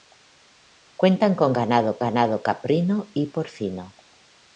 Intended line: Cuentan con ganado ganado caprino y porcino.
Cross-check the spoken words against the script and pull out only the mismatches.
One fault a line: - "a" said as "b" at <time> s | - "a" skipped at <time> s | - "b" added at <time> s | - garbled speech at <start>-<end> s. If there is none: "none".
none